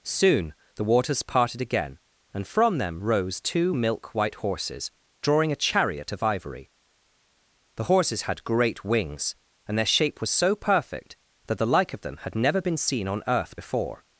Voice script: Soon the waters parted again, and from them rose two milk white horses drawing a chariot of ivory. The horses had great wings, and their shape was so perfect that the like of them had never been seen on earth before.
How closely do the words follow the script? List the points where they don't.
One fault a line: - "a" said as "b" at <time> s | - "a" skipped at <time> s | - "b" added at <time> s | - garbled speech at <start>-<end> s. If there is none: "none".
none